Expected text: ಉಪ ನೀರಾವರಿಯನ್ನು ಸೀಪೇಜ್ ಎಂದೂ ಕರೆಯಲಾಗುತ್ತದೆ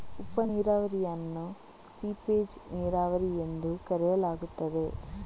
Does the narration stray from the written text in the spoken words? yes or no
yes